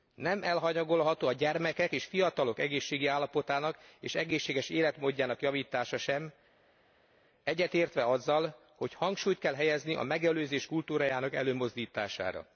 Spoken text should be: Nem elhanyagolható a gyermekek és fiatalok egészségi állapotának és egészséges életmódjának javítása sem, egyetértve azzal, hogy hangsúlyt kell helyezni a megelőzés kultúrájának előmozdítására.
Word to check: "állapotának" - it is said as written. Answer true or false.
true